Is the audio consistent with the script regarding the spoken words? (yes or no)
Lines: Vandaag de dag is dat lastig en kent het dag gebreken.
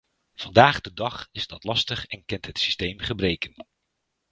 no